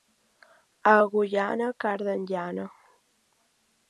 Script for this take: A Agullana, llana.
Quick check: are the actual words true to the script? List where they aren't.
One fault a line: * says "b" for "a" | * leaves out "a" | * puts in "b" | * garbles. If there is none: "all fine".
* puts in "carden"